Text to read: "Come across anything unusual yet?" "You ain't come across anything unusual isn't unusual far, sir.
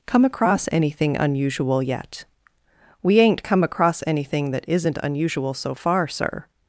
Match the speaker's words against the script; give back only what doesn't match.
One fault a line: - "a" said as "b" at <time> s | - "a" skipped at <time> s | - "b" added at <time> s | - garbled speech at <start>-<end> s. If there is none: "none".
- "You" said as "We" at 3.0 s
- "unusual" said as "that" at 4.5 s
- "so" added at 5.5 s